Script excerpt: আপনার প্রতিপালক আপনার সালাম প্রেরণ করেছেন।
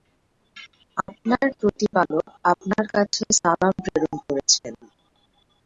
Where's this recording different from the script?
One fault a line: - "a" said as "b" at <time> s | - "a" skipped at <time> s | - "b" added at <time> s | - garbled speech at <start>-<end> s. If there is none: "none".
- "কাছে" added at 3.0 s